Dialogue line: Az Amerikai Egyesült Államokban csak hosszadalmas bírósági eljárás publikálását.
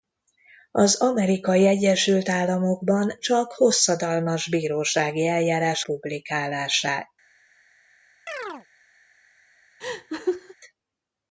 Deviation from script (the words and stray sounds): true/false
true